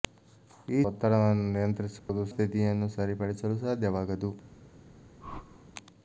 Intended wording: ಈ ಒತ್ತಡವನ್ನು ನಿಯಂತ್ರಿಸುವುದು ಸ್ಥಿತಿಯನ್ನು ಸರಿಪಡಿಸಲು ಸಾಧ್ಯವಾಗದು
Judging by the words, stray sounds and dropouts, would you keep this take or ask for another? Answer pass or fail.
fail